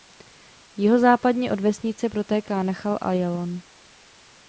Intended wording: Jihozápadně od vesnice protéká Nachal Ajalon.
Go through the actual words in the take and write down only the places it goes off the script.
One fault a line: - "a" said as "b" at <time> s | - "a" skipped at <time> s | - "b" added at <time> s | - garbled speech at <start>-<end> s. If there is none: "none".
none